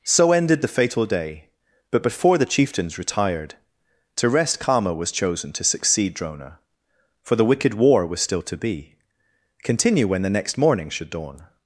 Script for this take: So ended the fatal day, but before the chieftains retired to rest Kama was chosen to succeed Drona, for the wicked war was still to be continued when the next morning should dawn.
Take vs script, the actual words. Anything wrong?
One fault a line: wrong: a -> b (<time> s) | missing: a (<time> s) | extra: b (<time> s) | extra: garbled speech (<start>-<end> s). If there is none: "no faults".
wrong: continued -> continue (9.6 s)